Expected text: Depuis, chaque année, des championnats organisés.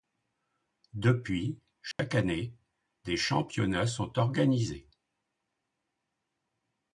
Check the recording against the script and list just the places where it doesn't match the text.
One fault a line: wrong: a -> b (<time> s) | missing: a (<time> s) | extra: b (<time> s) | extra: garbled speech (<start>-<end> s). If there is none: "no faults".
extra: sont (3.9 s)